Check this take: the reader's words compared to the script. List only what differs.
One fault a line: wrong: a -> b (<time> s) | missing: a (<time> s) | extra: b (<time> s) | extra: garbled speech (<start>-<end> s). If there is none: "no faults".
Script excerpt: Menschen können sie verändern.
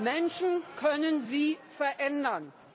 no faults